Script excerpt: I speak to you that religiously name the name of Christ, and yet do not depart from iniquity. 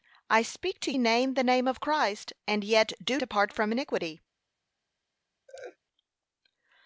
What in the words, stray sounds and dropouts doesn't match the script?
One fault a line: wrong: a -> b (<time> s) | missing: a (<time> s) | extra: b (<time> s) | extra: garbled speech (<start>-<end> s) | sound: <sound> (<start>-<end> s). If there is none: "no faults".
missing: you that religiously (0.9 s)
missing: not (3.2 s)
sound: laugh (5.5-5.8 s)